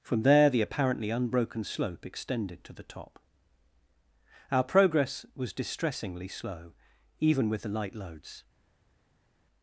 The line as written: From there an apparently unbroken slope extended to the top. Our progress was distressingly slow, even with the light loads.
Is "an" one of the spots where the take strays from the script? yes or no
yes